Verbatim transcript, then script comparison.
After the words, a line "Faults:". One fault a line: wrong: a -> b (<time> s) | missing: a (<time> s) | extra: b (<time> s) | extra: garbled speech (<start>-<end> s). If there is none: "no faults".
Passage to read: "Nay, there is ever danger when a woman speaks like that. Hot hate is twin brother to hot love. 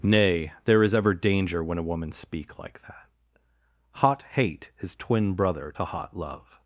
"Nay, there is ever danger when a woman speak like that. Hot hate is twin brother to hot love.
Faults:
wrong: speaks -> speak (2.1 s)